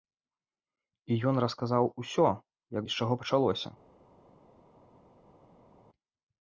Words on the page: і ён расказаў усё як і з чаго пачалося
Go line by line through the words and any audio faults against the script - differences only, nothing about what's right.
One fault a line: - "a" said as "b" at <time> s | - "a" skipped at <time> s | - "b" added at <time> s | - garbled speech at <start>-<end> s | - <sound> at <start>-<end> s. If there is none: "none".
none